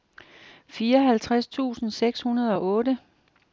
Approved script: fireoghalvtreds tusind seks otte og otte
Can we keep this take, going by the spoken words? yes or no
no